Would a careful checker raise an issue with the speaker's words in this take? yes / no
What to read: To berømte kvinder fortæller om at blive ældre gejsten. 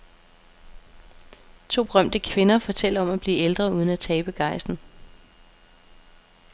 yes